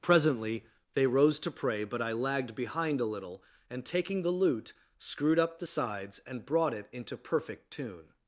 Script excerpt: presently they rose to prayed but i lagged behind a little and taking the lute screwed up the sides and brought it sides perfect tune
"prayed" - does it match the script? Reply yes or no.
no